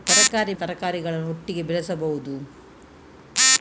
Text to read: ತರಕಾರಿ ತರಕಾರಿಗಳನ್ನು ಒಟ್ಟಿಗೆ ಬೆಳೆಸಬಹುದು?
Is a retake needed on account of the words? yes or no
no